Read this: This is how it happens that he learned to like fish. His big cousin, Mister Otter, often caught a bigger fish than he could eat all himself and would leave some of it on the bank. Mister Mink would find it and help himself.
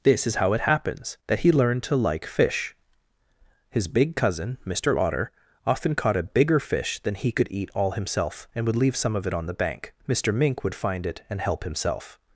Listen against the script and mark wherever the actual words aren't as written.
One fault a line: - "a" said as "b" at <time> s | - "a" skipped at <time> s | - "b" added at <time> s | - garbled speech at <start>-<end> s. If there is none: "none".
none